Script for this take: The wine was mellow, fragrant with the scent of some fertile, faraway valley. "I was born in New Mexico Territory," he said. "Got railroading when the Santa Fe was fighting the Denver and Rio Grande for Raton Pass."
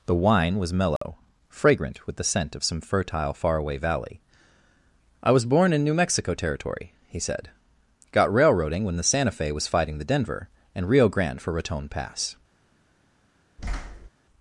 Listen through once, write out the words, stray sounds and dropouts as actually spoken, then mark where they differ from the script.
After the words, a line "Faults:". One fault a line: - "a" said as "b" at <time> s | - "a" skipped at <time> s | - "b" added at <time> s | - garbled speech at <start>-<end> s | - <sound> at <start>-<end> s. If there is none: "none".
The wine was mellow, fragrant with the scent of some fertile, faraway valley. "I was born in New Mexico Territory," he said. "Got railroading when the Santa Fe was fighting the Denver and Rio Grande for Raton Pass."
Faults:
- dropout at 1.0-1.0 s
- thud at 13.6-14.1 s